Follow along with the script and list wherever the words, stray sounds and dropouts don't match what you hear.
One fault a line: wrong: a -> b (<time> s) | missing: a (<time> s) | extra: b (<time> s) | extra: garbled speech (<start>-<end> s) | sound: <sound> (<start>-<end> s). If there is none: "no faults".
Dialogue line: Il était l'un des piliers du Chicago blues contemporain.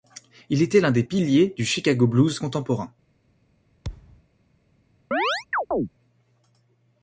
sound: thud (3.8-4.2 s)
sound: chirp (5.1-5.9 s)